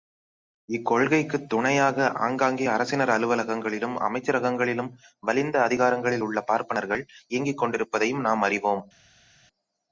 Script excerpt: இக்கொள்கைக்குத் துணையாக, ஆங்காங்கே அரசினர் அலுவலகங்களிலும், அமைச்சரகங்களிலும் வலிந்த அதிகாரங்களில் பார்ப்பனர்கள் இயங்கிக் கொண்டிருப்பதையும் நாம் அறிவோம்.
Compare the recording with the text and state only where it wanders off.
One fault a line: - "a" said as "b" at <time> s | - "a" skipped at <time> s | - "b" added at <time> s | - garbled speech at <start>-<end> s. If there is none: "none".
- "உள்ள" added at 6.2 s